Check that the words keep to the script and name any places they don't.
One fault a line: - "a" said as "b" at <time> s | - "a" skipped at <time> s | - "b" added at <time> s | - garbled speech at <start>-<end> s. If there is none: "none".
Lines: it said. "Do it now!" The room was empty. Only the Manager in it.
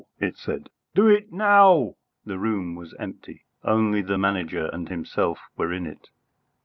- "and himself were" added at 4.7 s